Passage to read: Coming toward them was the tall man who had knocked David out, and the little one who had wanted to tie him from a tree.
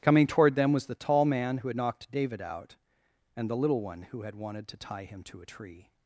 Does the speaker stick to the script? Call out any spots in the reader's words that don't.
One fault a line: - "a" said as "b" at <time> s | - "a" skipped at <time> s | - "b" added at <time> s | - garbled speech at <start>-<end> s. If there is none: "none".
- "from" said as "to" at 5.2 s